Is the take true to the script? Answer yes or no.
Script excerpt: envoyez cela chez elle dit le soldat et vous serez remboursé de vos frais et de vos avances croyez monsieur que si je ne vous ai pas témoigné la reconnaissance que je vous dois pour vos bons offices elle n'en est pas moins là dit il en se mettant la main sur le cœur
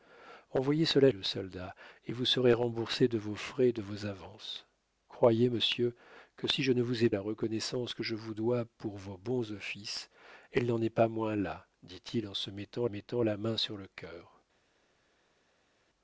no